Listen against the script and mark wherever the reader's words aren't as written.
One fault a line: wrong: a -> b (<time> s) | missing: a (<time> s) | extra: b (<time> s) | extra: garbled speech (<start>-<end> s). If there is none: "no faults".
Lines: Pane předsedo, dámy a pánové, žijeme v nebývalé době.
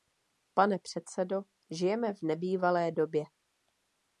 missing: dámy a pánové (1.4 s)